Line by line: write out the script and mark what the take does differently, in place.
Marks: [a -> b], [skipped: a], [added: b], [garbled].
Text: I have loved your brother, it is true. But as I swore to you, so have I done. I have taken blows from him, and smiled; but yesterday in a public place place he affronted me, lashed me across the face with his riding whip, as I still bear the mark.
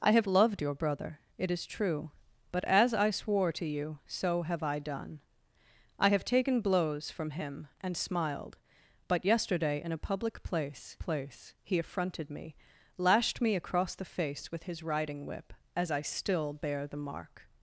I have loved your brother, it is true. But as I swore to you, so have I done. I have taken blows from him, and smiled; but yesterday in a public place place he affronted me, lashed me across the face with his riding whip, as I still bear the mark.